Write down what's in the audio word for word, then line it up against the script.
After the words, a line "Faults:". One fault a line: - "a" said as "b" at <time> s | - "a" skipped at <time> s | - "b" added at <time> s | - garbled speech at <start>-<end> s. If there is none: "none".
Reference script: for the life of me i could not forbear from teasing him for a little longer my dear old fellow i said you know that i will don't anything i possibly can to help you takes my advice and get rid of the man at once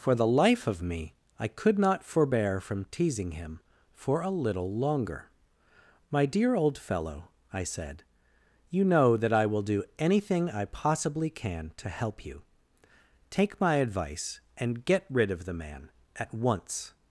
for the life of me i could not forbear from teasing him for a little longer my dear old fellow i said you know that i will do anything i possibly can to help you take my advice and get rid of the man at once
Faults:
- "don't" said as "do" at 9.6 s
- "takes" said as "take" at 13.3 s